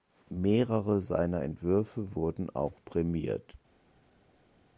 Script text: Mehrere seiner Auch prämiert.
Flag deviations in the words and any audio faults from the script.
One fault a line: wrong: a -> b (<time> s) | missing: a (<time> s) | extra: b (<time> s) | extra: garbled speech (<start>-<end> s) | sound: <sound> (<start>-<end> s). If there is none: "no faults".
extra: Entwürfe wurden (1.4 s)